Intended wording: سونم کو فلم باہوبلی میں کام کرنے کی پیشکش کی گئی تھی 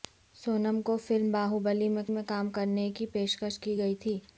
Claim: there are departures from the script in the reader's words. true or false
true